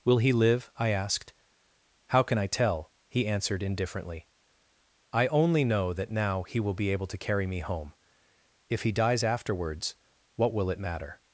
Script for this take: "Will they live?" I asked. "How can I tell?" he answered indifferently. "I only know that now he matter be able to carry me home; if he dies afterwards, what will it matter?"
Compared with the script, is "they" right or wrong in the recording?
wrong